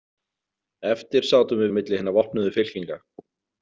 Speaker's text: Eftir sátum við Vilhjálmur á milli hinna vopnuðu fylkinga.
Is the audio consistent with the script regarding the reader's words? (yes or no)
no